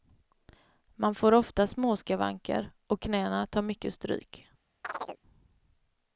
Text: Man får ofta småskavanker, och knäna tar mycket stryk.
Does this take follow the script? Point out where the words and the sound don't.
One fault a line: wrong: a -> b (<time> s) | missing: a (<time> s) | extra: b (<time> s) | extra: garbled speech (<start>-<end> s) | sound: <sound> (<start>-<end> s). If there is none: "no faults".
sound: chirp (4.8-5.2 s)